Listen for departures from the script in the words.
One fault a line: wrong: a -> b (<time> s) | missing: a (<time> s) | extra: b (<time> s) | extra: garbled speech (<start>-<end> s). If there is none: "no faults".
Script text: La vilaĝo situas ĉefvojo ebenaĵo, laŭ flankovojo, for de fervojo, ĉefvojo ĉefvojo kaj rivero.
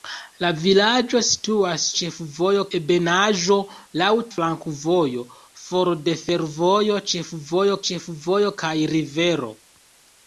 no faults